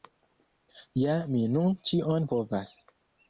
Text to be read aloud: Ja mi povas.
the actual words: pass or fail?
fail